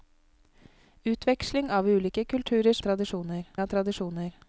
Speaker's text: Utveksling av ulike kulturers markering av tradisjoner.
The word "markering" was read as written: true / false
false